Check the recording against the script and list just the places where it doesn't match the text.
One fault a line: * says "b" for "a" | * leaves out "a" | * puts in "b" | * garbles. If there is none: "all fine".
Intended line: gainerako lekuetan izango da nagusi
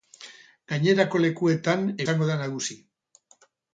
all fine